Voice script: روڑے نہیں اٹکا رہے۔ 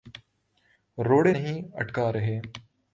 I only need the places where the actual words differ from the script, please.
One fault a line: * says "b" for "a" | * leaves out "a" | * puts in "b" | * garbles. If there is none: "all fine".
all fine